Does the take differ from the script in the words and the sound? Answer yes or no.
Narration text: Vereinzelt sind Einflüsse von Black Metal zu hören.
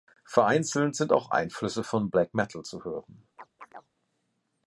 yes